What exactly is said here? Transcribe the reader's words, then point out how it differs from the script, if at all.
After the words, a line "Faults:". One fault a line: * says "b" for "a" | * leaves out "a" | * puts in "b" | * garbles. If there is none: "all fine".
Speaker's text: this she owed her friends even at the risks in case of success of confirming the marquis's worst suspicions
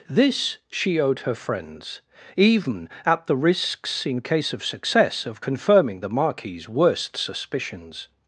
this she owed her friends even at the risks in case of success of confirming the marquis's worst suspicions
Faults:
all fine